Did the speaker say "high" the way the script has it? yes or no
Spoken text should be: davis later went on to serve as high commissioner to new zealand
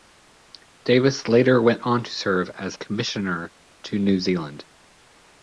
no